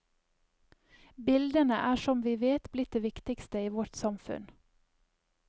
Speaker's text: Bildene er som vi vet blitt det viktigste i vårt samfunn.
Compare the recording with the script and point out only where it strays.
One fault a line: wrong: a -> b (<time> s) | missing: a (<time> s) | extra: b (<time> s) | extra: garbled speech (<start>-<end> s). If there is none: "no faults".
no faults